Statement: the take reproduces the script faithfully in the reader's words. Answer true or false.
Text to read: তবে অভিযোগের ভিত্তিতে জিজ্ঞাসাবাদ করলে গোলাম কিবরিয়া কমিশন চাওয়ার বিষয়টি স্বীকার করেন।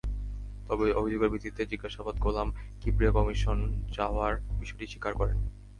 false